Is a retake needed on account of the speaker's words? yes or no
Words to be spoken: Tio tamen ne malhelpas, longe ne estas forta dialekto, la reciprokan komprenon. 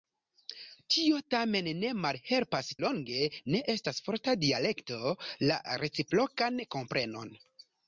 no